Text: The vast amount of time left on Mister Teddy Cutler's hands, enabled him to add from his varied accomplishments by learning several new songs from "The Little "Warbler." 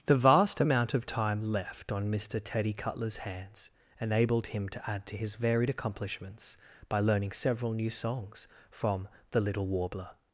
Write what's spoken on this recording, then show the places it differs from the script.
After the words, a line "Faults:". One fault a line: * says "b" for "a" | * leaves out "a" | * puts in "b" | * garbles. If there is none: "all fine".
The vast amount of time left on Mister Teddy Cutler's hands, enabled him to add to his varied accomplishments by learning several new songs from "The Little "Warbler."
Faults:
* says "to" for "from"